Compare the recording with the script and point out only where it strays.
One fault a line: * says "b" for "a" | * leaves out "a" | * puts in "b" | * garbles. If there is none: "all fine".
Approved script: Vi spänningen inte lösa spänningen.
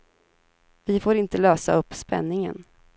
* says "får" for "spänningen"
* puts in "upp"